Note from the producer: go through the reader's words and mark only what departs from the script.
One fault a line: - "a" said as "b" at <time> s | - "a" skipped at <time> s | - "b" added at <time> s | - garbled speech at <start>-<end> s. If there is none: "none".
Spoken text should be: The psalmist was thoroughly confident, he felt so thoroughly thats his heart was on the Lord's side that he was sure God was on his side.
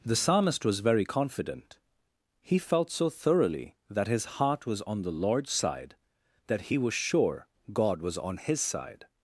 - "thoroughly" said as "very" at 0.8 s
- "thats" said as "that" at 3.9 s